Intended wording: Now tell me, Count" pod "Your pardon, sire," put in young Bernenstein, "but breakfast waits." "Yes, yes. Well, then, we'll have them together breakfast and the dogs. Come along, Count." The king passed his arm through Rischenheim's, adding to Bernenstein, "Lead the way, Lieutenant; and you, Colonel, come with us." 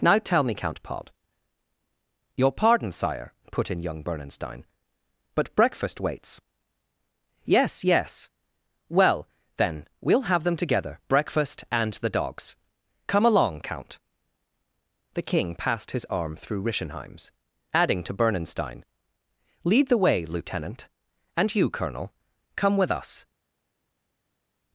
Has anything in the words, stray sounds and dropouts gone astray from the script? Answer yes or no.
no